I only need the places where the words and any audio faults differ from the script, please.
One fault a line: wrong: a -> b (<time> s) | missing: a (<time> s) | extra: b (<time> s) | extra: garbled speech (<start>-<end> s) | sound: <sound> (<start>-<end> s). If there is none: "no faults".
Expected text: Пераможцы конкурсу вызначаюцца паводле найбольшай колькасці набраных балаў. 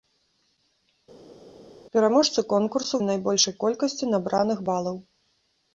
missing: вызначаюцца паводле (3.0 s)